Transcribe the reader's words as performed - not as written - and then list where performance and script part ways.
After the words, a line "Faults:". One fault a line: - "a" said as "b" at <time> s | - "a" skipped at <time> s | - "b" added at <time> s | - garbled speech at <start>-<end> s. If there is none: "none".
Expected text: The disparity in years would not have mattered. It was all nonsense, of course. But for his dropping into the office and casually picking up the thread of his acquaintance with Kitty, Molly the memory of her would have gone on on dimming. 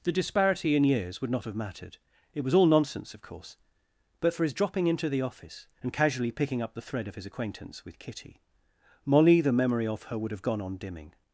The disparity in years would not have mattered. It was all nonsense, of course. But for his dropping into the office and casually picking up the thread of his acquaintance with Kitty, Molly the memory of her would have gone on dimming.
Faults:
- "on" skipped at 10.8 s